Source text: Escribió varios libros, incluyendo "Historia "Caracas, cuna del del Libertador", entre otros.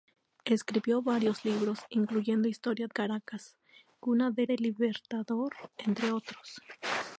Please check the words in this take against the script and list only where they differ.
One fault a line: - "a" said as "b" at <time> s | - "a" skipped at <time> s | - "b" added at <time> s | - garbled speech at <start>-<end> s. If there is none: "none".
none